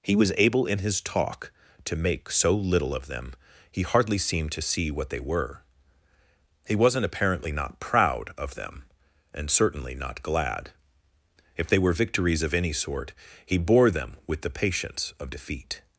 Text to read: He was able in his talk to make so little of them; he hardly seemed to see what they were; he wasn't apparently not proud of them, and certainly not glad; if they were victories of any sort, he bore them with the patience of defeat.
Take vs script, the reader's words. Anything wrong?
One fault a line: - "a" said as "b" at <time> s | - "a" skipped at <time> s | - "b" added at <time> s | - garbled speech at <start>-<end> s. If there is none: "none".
none